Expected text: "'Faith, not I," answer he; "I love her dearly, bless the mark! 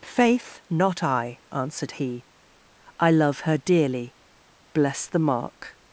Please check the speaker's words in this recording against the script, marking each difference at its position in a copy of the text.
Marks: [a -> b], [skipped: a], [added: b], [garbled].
"'Faith, not I," [answer -> answered] he; "I love her dearly, bless the mark!